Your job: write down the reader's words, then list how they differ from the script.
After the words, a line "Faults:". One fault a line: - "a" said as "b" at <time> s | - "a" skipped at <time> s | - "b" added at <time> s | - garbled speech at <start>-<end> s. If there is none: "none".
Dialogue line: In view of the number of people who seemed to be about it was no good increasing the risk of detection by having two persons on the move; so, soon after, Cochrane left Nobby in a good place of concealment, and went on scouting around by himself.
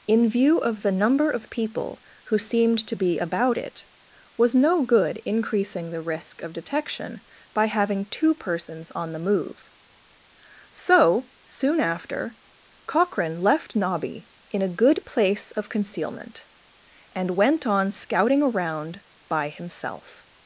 In view of the number of people who seemed to be about it was no good increasing the risk of detection by having two persons on the move; so, soon after, Cochrane left Nobby in a good place of concealment, and went on scouting around by himself.
Faults:
none